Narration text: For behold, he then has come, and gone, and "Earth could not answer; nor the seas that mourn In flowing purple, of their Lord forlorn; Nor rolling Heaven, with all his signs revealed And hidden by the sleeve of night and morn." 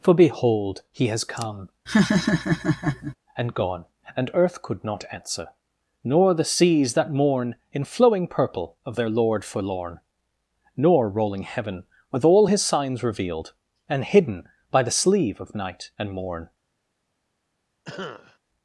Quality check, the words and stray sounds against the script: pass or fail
fail